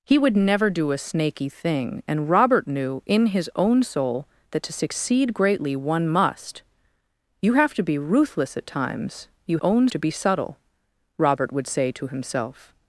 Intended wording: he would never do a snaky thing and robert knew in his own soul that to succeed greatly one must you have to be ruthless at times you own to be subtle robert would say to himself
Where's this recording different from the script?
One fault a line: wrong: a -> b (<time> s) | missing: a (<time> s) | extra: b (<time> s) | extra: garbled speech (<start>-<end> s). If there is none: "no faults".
no faults